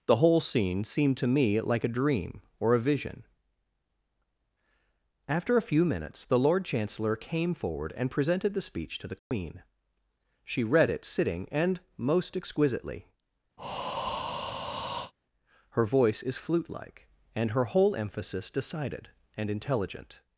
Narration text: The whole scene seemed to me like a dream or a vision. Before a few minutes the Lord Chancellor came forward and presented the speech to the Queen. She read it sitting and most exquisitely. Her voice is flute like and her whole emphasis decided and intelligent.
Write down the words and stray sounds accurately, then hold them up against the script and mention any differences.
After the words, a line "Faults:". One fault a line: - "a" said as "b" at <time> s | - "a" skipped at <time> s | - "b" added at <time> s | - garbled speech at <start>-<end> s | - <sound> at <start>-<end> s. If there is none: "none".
The whole scene seemed to me like a dream or a vision. After a few minutes the Lord Chancellor came forward and presented the speech to the Queen. She read it sitting and most exquisitely. Her voice is flute like and her whole emphasis decided and intelligent.
Faults:
- "Before" said as "After" at 5.3 s
- dropout at 9.2-9.3 s
- breath at 13.6-15.1 s